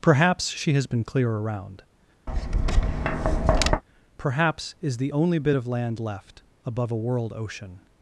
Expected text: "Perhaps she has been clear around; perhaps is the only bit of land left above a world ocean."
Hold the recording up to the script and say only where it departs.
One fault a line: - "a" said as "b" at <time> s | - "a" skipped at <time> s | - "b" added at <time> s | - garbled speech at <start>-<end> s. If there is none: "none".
none